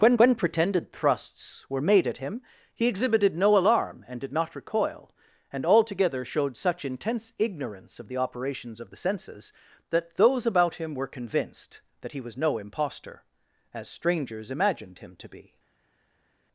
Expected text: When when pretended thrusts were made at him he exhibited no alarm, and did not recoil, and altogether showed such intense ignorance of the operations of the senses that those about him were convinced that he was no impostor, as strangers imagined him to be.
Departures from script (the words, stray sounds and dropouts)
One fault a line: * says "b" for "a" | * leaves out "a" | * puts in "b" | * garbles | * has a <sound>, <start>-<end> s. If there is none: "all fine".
all fine